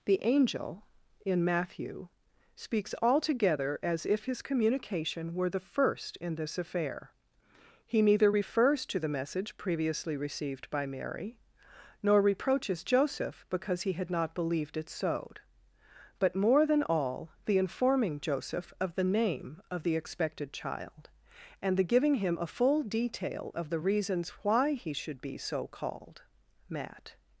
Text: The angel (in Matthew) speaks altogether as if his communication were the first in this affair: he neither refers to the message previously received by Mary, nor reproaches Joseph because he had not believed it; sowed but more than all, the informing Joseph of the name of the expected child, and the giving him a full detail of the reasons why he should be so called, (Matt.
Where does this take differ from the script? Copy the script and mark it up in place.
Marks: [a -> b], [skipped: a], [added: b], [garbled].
The angel (in Matthew) speaks altogether as if his communication were the first in this affair: he neither refers to the message previously received by Mary, nor reproaches Joseph because he had not believed it; sowed but more than all, the informing Joseph of the name of the expected child, and the giving him a full detail of the reasons why he should be so called, (Matt.